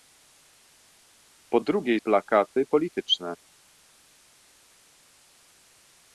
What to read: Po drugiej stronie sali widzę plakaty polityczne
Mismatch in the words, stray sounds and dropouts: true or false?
true